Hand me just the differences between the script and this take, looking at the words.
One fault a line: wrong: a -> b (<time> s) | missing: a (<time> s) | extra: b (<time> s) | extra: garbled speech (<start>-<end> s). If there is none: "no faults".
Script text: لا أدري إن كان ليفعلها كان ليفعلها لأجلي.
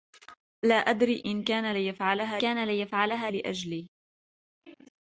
no faults